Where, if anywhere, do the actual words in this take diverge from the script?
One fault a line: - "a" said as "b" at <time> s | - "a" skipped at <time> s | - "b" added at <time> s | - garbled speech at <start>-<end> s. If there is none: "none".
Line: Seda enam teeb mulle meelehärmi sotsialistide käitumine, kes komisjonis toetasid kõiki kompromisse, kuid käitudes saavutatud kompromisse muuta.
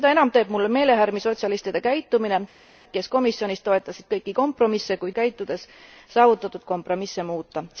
none